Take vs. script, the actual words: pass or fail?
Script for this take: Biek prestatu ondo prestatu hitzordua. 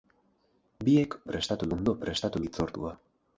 pass